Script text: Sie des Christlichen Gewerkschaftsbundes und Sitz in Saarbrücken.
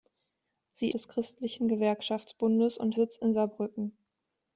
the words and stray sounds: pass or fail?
pass